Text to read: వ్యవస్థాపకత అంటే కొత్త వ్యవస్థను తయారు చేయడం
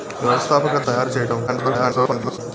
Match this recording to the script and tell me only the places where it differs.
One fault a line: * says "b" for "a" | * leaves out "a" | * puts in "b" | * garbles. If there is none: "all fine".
* leaves out "అంటే కొత్త వ్యవస్థను"
* garbles